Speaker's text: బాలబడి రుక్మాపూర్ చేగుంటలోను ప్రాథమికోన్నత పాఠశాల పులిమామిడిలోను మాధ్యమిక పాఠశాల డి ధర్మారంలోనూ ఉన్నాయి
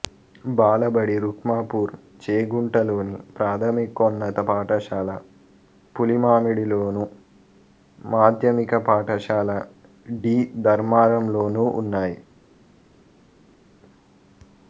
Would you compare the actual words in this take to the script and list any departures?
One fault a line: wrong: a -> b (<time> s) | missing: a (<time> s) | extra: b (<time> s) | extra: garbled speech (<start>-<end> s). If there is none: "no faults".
no faults